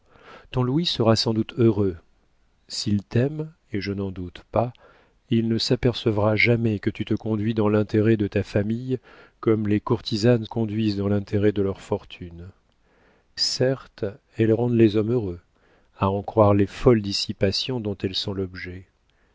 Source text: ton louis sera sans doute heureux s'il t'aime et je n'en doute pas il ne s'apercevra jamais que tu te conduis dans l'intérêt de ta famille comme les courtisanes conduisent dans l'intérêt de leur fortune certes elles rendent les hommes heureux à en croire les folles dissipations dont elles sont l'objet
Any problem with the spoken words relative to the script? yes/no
no